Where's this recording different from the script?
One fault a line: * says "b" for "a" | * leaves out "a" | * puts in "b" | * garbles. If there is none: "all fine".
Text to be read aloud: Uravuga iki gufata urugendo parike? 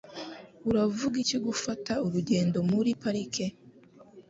* puts in "muri"